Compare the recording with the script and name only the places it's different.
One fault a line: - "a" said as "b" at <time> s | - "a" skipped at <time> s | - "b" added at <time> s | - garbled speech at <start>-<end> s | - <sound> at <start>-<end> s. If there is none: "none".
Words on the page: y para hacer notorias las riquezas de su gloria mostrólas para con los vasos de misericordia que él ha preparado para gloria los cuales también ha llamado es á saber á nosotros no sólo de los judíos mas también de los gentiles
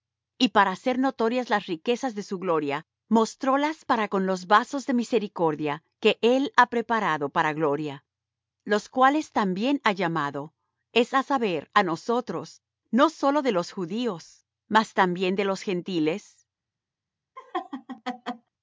- laugh at 17.4-18.5 s